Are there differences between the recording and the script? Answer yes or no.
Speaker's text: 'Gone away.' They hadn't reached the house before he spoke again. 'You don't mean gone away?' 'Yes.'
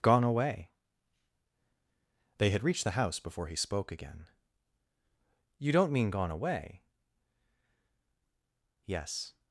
yes